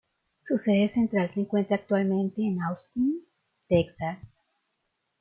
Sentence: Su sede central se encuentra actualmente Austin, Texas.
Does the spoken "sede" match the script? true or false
true